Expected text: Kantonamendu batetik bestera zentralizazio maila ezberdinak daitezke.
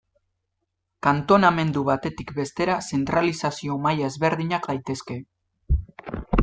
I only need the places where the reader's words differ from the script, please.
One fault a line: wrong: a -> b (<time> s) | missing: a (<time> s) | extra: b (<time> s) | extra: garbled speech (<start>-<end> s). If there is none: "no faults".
no faults